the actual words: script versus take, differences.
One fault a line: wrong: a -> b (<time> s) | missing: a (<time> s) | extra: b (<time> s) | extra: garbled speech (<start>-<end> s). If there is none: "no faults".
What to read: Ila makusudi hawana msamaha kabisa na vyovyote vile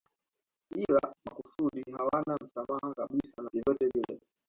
no faults